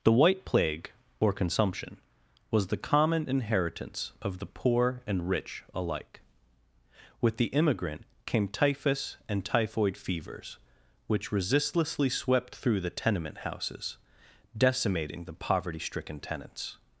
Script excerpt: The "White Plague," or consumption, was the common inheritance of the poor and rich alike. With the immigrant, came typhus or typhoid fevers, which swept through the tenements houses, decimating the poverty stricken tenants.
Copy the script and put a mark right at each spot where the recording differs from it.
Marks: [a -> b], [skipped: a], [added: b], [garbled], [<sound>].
The "White Plague," or consumption, was the common inheritance of the poor and rich alike. With the immigrant, came typhus [or -> and] typhoid fevers, which [added: resistlessly] swept through the [tenements -> tenement] houses, decimating the poverty stricken tenants.